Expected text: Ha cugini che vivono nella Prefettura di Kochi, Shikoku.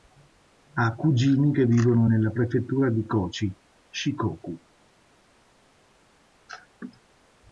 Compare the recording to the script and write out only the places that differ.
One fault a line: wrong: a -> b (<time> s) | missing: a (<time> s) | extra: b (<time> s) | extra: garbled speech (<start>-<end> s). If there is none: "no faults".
no faults